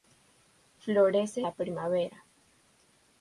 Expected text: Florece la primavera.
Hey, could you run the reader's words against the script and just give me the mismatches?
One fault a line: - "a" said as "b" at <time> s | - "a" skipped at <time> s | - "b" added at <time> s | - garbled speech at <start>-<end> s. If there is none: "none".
none